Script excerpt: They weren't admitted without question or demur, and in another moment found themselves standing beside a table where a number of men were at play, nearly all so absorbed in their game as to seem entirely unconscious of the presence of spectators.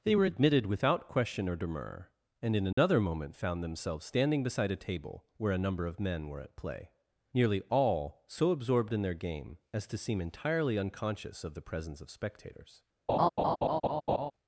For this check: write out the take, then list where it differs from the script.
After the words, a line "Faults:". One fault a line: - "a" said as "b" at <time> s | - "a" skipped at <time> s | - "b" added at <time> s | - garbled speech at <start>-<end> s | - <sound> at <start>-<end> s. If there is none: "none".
They were admitted without question or demur, and in another moment found themselves standing beside a table where a number of men were at play, nearly all so absorbed in their game as to seem entirely unconscious of the presence of spectators.
Faults:
- "weren't" said as "were" at 0.1 s
- dropout at 2.7-2.8 s
- laugh at 13.1-14.3 s